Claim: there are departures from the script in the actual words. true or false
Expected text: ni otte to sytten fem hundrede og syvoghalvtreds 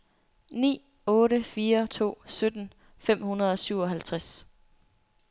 true